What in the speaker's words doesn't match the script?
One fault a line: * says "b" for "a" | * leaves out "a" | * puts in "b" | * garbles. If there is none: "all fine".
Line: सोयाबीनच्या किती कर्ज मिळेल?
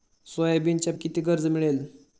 all fine